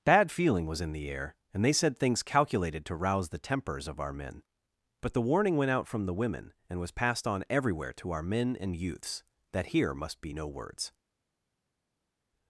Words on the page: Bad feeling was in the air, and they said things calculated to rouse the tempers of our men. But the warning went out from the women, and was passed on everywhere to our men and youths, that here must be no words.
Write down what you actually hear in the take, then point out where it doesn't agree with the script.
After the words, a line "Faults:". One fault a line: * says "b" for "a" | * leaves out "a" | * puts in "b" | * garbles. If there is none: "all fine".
Bad feeling was in the air, and they said things calculated to rouse the tempers of our men. But the warning went out from the women, and was passed on everywhere to our men and youths, that here must be no words.
Faults:
all fine